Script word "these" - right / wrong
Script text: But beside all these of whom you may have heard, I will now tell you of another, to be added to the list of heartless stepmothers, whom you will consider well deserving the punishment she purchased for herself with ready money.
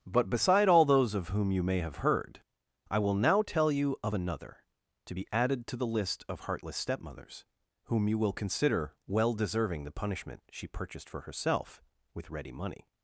wrong